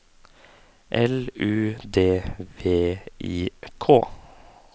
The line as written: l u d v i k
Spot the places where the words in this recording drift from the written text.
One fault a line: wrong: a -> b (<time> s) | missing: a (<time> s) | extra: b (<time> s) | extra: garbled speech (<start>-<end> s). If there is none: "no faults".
no faults